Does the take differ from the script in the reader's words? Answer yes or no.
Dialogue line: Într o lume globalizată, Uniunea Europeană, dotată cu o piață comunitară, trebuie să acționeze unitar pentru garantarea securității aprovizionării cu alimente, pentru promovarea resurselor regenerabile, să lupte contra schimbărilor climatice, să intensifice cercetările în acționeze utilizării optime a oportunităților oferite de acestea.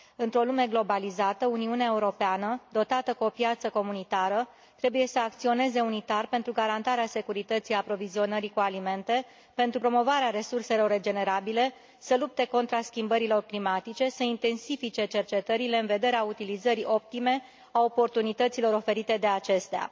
yes